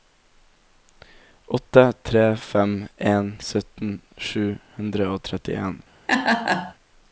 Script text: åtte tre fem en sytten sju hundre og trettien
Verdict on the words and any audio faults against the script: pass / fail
fail